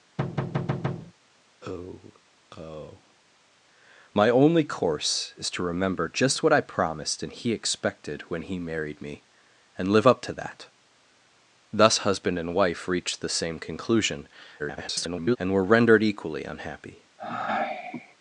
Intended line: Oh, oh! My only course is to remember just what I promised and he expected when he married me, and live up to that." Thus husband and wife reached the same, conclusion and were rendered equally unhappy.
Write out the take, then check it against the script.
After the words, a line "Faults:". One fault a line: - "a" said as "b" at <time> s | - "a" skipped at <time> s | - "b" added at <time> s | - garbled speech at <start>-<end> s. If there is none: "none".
Oh, oh! My only course is to remember just what I promised and he expected when he married me, and live up to that." Thus husband and wife reached the same, conclusion [garbled] and were rendered equally unhappy.
Faults:
- garbled speech at 14.6-15.4 s